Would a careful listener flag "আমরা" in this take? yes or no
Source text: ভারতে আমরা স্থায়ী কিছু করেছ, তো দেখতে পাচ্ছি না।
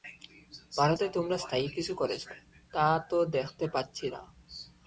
yes